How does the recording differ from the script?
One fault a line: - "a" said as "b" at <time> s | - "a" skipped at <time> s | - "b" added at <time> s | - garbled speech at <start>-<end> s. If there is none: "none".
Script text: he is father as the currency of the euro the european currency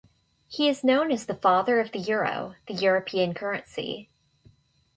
- "father" said as "known" at 0.8 s
- "currency" said as "father" at 1.4 s